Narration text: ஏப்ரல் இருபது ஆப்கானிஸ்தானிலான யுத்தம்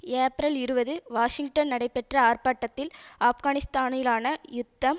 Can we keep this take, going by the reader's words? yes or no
no